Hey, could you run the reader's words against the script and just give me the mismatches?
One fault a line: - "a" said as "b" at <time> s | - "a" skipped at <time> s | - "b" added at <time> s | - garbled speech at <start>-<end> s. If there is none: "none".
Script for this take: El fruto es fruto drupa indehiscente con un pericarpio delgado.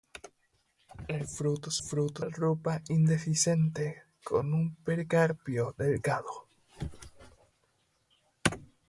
none